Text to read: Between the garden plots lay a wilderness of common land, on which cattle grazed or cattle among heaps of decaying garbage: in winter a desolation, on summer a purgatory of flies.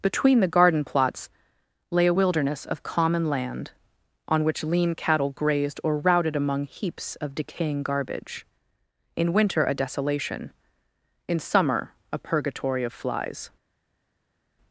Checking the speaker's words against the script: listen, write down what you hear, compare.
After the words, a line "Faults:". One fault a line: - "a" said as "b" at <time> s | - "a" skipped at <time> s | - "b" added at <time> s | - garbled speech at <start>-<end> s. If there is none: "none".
Between the garden plots lay a wilderness of common land, on which lean cattle grazed or routed among heaps of decaying garbage: in winter a desolation, in summer a purgatory of flies.
Faults:
- "lean" added at 4.6 s
- "cattle" said as "routed" at 6.0 s
- "on" said as "in" at 11.3 s